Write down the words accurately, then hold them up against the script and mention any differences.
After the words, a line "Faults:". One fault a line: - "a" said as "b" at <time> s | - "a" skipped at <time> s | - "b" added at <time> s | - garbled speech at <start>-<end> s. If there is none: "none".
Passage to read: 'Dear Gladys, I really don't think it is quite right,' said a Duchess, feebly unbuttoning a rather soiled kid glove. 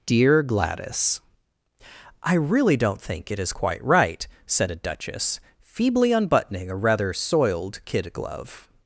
'Dear Gladys, I really don't think it is quite right,' said a Duchess, feebly unbuttoning a rather soiled kid glove.
Faults:
none